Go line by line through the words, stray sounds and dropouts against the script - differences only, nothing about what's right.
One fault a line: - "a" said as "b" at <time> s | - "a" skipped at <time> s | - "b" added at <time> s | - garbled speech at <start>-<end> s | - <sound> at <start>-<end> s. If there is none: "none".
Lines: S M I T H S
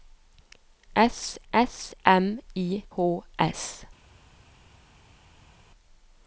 - "s" added at 1.5 s
- "T" skipped at 2.8 s